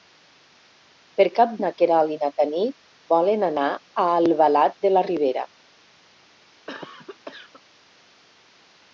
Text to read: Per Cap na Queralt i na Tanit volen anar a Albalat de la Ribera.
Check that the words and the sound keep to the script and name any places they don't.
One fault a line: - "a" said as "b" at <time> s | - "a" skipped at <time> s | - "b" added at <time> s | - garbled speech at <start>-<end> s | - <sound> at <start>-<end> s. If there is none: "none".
- cough at 6.7-7.6 s